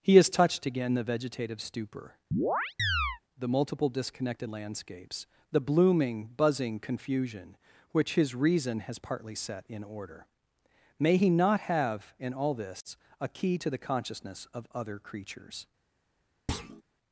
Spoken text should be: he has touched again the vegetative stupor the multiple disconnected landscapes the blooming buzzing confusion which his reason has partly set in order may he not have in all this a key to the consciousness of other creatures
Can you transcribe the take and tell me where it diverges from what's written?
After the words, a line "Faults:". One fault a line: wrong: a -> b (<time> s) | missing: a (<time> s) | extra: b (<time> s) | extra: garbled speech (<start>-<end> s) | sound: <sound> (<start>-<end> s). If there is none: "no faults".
he has touched again the vegetative stupor the multiple disconnected landscapes the blooming buzzing confusion which his reason has partly set in order may he not have in all this a key to the consciousness of other creatures
Faults:
sound: chirp (2.3-3.2 s)
sound: thud (16.5-16.8 s)